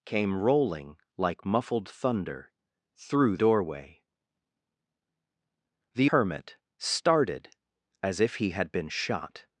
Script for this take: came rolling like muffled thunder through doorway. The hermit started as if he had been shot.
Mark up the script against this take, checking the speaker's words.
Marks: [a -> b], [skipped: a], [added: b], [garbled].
came rolling like muffled thunder through doorway. The hermit started as if he had been shot.